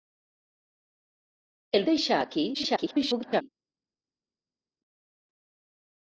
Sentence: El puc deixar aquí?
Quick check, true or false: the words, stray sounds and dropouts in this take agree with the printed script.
false